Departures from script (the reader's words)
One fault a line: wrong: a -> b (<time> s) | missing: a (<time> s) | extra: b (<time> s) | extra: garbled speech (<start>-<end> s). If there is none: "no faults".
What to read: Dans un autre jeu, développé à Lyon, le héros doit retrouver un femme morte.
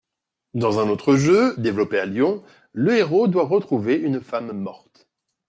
wrong: un -> une (4.0 s)